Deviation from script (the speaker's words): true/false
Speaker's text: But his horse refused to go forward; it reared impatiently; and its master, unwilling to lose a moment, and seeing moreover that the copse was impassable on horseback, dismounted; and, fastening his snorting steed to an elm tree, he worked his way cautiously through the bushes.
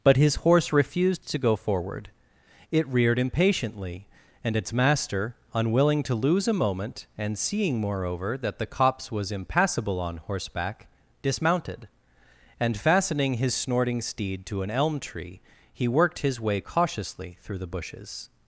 false